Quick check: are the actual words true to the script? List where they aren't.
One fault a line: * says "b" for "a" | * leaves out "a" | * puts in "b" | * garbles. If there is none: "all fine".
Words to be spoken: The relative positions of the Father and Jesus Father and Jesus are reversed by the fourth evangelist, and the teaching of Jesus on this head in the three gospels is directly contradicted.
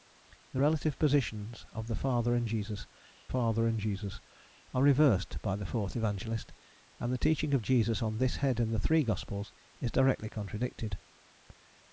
all fine